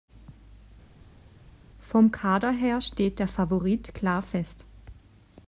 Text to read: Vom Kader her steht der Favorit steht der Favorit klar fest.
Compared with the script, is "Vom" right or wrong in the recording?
right